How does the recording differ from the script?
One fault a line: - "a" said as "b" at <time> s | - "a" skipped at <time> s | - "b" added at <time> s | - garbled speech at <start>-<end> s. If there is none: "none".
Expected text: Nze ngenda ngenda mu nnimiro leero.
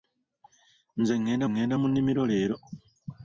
none